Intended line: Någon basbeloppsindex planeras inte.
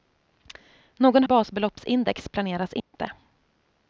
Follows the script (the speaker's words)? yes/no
yes